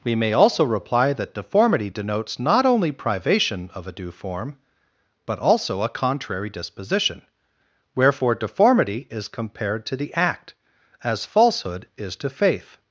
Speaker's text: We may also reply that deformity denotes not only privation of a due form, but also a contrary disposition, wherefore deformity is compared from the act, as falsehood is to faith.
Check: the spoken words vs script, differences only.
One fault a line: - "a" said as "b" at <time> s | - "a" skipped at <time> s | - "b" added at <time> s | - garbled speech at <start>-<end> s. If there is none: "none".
- "from" said as "to" at 9.8 s